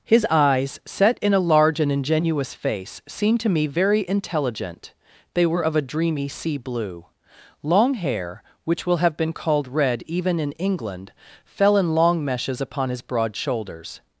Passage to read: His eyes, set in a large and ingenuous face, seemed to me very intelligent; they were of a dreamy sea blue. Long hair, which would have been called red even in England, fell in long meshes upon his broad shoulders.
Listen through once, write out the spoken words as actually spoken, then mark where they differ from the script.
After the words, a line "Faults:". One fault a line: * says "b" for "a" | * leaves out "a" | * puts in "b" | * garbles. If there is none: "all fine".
His eyes, set in a large and ingenuous face, seemed to me very intelligent; they were of a dreamy sea blue. Long hair, which will have been called red even in England, fell in long meshes upon his broad shoulders.
Faults:
* says "will" for "would"